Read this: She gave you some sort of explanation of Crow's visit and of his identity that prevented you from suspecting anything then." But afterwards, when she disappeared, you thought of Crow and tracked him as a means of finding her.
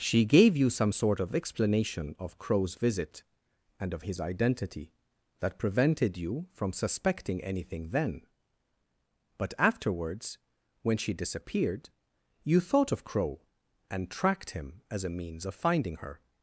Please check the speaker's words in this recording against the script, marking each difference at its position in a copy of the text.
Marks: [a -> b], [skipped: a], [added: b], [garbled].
She gave you some sort of explanation of Crow's visit and of his identity that prevented you from suspecting anything then." But afterwards, when she disappeared, you thought of Crow and tracked him as a means of finding her.